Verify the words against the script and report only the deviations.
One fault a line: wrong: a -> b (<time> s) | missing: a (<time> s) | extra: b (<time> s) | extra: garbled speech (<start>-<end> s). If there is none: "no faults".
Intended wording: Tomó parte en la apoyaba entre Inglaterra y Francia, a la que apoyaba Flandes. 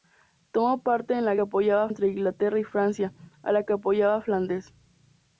no faults